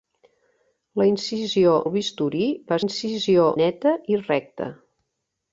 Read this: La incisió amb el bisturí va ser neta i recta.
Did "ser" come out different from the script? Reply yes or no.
yes